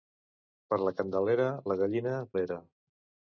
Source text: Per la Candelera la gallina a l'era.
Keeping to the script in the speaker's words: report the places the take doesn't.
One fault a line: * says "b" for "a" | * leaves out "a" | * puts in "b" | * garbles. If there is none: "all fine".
all fine